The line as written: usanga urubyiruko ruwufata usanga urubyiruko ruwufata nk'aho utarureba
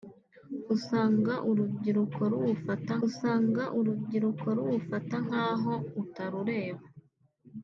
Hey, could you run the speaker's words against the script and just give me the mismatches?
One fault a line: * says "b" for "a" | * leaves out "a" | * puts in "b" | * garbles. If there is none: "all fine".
all fine